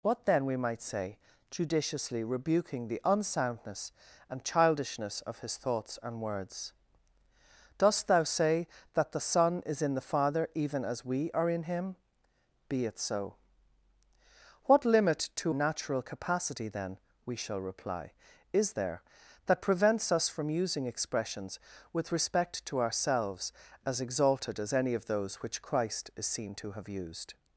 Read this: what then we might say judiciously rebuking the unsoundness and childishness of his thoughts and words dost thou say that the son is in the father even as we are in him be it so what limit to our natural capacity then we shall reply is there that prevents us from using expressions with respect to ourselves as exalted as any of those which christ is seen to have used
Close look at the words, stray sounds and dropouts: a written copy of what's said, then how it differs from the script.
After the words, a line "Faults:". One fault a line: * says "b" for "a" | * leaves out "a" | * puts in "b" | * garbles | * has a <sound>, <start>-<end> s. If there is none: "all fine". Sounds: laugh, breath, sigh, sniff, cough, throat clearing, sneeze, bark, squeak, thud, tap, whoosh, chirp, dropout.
what then we might say judiciously rebuking the unsoundness and childishness of his thoughts and words dost thou say that the son is in the father even as we are in him be it so what limit to natural capacity then we shall reply is there that prevents us from using expressions with respect to ourselves as exalted as any of those which christ is seen to have used
Faults:
* leaves out "our"